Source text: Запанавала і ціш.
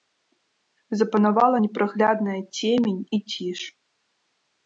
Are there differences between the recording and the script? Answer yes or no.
yes